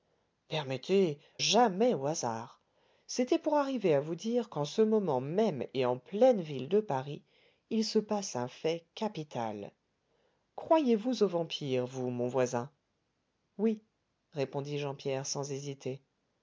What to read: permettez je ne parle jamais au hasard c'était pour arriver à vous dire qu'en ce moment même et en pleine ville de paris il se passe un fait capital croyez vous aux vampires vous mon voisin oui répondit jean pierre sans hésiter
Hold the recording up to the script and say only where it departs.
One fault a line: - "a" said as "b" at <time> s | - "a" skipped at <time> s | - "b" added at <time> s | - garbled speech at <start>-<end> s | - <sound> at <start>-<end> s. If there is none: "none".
- "je ne parle" skipped at 1.2 s